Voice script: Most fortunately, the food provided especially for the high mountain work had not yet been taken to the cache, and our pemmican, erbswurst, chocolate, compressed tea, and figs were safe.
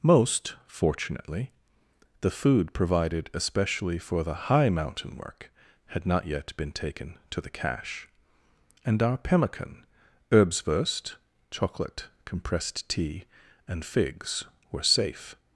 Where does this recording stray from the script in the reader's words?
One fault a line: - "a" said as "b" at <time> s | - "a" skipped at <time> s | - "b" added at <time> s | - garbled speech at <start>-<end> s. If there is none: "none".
none